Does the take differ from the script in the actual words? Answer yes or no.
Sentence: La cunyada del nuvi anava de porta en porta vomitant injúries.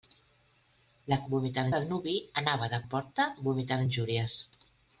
yes